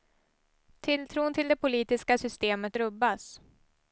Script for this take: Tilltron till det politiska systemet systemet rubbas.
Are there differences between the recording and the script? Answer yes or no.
yes